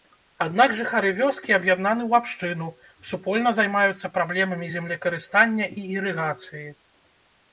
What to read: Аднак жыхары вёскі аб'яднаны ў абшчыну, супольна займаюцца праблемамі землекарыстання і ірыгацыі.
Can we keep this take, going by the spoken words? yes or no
yes